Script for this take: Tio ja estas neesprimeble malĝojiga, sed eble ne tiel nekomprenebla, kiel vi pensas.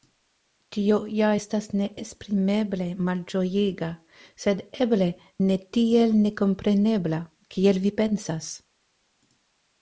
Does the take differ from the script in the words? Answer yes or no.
no